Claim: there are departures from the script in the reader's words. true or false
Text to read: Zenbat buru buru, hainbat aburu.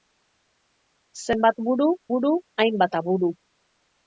false